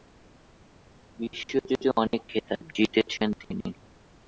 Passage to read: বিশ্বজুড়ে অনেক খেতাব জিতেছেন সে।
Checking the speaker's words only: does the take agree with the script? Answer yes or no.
no